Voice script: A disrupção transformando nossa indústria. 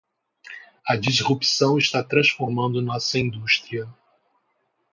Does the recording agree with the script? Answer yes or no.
no